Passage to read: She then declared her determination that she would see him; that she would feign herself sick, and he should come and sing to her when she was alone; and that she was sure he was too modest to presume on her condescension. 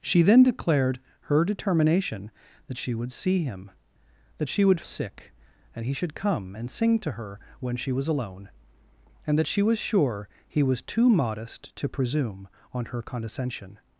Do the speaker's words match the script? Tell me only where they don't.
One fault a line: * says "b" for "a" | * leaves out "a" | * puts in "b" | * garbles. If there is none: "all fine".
* leaves out "feign herself"